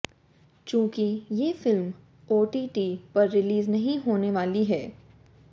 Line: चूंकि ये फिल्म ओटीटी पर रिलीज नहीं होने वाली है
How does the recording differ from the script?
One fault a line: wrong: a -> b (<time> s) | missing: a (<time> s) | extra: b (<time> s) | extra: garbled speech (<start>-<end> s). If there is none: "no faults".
no faults